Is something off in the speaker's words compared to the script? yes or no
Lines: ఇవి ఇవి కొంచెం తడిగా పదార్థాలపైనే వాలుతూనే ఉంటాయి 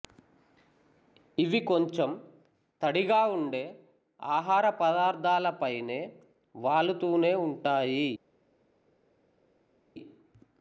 yes